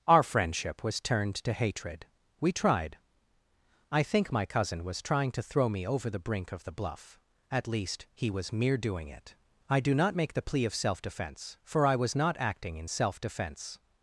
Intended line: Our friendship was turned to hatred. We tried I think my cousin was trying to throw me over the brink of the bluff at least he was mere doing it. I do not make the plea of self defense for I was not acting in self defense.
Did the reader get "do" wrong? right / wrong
right